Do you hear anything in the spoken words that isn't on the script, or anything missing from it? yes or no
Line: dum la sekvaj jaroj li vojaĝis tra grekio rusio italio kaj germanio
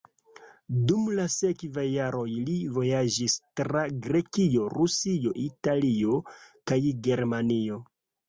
no